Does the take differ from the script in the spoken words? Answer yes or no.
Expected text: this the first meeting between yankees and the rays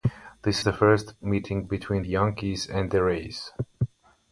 no